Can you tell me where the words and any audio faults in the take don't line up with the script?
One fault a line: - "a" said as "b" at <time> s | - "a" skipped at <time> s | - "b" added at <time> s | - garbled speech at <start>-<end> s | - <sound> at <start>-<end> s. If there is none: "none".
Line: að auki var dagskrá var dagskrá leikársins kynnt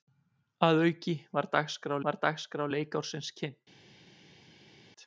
none